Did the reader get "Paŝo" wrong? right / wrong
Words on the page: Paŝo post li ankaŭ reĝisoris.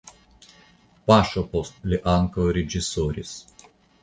right